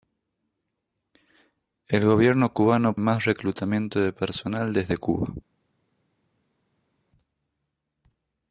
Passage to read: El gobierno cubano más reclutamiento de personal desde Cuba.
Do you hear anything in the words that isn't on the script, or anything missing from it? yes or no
no